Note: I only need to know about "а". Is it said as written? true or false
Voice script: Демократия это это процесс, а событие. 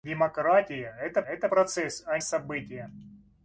true